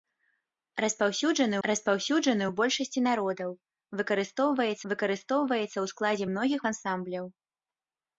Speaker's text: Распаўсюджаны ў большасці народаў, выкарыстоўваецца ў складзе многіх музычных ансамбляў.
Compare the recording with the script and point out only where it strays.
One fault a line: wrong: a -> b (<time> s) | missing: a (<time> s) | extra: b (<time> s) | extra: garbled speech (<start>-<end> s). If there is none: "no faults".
extra: распаўсюджаны (1.7 s)
extra: выкарыстоўваецца (4.9 s)
missing: музычных (6.6 s)